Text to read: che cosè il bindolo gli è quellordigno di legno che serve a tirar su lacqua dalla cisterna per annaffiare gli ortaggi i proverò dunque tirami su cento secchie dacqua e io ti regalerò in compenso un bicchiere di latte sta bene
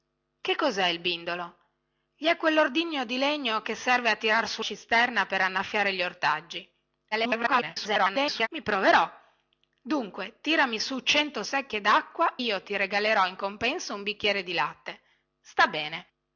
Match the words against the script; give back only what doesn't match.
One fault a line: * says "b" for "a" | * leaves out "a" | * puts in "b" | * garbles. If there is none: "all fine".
* leaves out "lacqua dalla"
* garbles
* leaves out "e"